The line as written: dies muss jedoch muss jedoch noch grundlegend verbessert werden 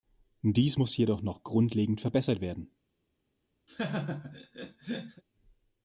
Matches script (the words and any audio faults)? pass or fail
fail